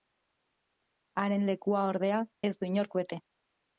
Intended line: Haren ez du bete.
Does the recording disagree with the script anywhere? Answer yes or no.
yes